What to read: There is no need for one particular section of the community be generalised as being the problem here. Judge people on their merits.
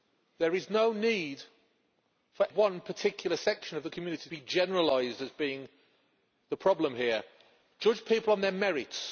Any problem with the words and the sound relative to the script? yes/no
no